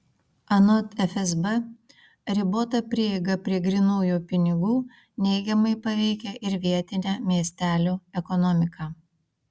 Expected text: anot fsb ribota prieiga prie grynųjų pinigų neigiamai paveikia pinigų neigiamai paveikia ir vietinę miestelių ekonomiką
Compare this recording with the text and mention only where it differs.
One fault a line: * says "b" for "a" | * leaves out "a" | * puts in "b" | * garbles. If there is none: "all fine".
* leaves out "pinigų neigiamai paveikia"